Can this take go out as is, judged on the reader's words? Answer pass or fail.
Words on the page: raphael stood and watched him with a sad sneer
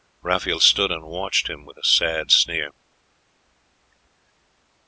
pass